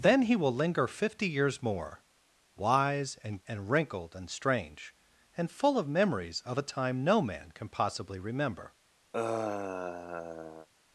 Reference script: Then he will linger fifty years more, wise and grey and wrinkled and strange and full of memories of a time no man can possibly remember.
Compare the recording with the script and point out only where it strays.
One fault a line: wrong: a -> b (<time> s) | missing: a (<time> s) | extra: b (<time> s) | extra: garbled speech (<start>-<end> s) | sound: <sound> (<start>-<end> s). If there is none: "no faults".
missing: grey (3.4 s)
sound: sigh (9.1-10.7 s)